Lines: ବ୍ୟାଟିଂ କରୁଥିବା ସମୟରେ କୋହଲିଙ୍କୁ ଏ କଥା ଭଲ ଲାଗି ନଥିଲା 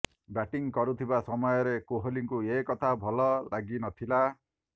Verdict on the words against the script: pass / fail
pass